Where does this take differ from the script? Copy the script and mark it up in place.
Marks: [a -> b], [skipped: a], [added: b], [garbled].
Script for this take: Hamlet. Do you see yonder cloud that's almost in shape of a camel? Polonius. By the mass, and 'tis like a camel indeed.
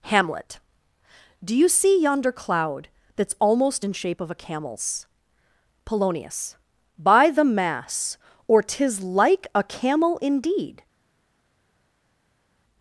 Hamlet. Do you see yonder cloud that's almost in shape of a [camel? -> camels] Polonius. By the mass, [and -> or] 'tis like a camel indeed.